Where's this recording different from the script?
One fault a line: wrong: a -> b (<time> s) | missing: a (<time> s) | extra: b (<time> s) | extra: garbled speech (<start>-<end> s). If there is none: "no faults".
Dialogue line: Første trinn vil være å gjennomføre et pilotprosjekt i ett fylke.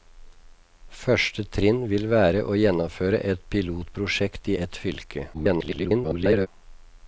extra: garbled speech (5.3-6.5 s)